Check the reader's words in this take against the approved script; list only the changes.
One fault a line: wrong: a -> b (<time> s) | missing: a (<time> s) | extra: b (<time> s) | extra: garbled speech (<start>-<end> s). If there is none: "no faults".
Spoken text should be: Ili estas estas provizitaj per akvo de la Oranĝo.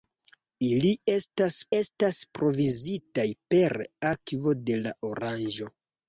no faults